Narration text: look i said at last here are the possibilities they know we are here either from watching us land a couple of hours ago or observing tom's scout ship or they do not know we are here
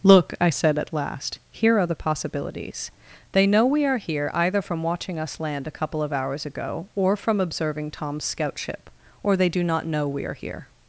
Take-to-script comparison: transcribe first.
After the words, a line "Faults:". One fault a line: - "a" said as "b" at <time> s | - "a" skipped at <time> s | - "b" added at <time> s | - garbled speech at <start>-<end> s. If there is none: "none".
look i said at last here are the possibilities they know we are here either from watching us land a couple of hours ago or from observing tom's scout ship or they do not know we are here
Faults:
- "from" added at 7.2 s